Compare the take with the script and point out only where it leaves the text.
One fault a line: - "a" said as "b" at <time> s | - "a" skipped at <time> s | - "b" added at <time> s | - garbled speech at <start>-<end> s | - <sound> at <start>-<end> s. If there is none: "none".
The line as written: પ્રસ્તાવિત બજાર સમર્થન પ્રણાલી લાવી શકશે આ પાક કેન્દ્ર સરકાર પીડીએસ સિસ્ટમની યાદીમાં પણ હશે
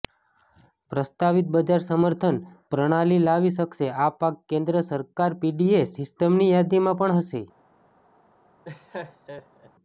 - laugh at 8.6-9.7 s